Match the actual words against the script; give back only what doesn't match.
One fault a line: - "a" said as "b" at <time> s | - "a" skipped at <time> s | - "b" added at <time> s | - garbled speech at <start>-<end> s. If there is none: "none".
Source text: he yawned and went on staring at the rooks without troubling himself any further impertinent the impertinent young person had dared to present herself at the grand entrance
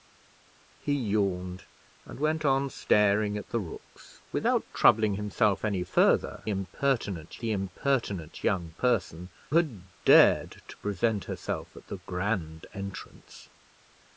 none